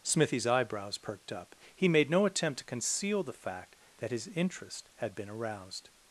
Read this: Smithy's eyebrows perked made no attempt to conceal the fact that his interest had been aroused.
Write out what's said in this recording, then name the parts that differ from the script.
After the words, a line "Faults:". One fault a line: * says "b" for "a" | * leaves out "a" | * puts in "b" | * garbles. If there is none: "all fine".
Smithy's eyebrows perked up. He made no attempt to conceal the fact that his interest had been aroused.
Faults:
* puts in "up He"